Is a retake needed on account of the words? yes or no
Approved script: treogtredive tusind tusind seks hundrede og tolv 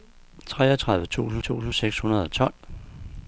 no